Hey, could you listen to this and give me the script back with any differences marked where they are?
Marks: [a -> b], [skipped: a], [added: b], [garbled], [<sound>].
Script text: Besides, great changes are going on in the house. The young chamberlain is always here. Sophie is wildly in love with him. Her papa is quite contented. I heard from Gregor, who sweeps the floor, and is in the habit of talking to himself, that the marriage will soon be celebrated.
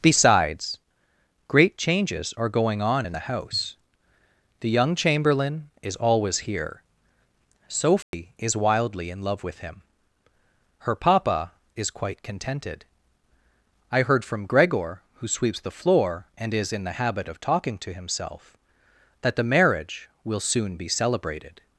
Besides, great changes are going on in the house. The young chamberlain is always here. Sophie [dropout] is wildly in love with him. Her papa is quite contented. I heard from Gregor, who sweeps the floor, and is in the habit of talking to himself, that the marriage will soon be celebrated.